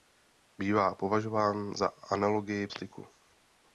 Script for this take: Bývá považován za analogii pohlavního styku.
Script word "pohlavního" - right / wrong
wrong